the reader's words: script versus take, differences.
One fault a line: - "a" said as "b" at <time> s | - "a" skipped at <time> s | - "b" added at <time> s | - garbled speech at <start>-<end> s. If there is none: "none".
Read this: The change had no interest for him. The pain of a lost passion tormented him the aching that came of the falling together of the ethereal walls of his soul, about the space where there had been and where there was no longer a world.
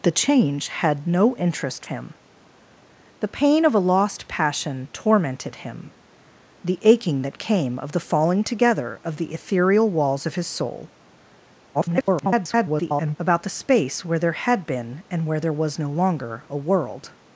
- "for" skipped at 1.9 s
- garbled speech at 11.7-13.2 s